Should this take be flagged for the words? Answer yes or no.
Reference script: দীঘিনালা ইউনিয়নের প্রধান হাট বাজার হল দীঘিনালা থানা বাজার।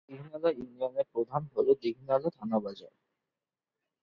yes